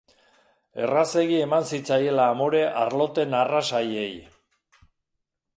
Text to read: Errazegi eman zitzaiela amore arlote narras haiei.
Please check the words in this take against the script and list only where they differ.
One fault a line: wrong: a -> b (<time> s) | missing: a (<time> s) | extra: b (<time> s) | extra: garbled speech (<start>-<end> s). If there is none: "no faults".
no faults